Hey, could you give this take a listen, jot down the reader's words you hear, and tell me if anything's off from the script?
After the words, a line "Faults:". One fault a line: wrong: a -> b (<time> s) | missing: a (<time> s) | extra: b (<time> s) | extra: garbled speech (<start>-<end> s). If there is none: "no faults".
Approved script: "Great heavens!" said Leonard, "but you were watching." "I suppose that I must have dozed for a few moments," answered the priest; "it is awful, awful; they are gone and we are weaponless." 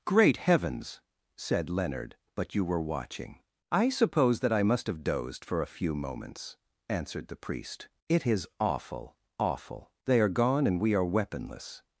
"Great heavens!" said Leonard, "but you were watching." "I suppose that I must have dozed for a few moments," answered the priest; "it is awful, awful; they are gone and we are weaponless."
Faults:
no faults